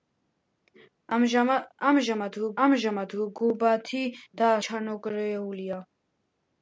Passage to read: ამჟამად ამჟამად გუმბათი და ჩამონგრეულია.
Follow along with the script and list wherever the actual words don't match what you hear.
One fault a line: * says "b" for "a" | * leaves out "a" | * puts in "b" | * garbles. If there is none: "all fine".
all fine